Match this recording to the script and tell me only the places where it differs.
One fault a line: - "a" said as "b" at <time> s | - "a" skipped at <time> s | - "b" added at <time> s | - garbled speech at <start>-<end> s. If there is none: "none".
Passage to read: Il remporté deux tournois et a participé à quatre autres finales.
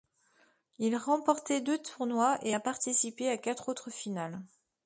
none